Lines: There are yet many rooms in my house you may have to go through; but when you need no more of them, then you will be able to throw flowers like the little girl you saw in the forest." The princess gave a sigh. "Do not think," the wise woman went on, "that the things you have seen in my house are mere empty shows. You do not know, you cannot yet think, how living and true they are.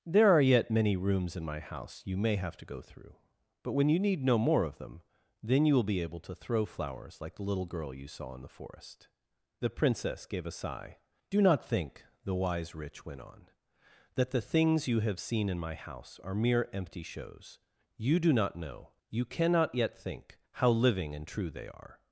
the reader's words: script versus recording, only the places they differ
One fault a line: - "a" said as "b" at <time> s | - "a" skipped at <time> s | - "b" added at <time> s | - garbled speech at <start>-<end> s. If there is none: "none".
- "woman" said as "rich" at 12.8 s